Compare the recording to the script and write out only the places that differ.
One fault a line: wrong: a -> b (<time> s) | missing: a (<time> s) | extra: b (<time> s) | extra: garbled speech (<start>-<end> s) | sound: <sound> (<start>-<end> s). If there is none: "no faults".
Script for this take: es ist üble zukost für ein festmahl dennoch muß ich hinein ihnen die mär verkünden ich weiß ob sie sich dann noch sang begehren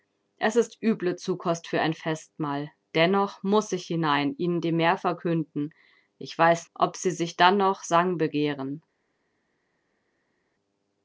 no faults